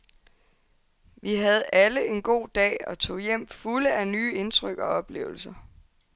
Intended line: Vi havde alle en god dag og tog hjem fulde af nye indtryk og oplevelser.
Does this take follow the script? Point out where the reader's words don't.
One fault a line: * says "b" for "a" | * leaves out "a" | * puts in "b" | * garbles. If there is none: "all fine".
all fine